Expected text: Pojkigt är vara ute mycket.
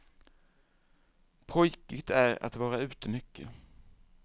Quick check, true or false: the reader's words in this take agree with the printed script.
false